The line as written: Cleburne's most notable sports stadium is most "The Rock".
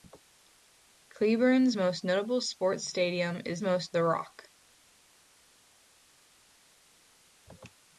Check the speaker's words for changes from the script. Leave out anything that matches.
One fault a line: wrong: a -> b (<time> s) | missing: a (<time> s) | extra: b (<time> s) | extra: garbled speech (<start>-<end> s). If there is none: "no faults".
no faults